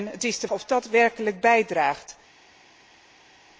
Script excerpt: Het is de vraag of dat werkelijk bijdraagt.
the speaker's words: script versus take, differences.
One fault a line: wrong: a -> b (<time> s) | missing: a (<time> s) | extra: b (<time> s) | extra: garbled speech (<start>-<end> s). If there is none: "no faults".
missing: vraag (0.5 s)